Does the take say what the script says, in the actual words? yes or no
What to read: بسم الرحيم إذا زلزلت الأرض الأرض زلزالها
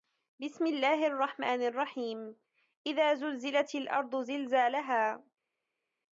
no